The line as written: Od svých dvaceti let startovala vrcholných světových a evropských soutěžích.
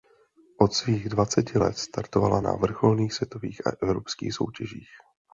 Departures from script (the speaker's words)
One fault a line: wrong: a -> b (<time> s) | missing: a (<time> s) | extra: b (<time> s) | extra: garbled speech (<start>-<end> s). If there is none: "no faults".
extra: na (2.4 s)